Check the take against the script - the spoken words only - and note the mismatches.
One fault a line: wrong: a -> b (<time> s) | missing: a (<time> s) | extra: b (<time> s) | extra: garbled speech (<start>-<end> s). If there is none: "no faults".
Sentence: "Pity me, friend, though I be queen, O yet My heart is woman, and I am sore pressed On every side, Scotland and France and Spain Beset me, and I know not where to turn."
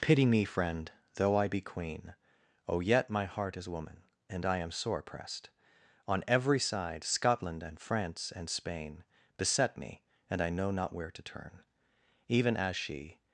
extra: Even as she (12.3 s)